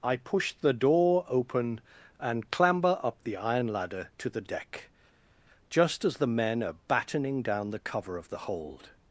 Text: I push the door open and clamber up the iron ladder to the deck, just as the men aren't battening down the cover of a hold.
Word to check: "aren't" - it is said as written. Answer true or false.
false